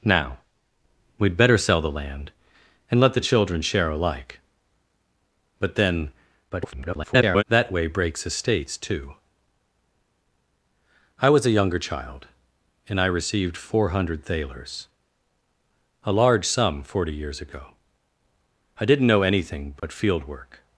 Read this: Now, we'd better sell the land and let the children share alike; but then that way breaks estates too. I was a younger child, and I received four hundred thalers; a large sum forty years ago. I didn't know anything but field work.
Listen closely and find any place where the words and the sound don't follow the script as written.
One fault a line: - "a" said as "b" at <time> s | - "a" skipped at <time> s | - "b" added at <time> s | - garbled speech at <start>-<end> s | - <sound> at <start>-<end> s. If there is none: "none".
- garbled speech at 6.5-7.4 s
- dropout at 19.8-19.8 s